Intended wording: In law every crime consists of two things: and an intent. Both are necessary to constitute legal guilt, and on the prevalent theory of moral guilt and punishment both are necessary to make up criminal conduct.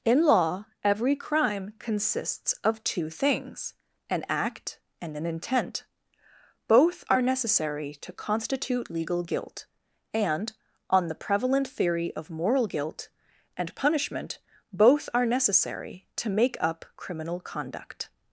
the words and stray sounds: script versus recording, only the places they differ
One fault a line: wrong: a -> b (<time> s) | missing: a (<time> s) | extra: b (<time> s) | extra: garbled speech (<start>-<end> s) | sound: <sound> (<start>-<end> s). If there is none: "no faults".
extra: an act (4.1 s)